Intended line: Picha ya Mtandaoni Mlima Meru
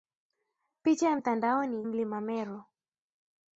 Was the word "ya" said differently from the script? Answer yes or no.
no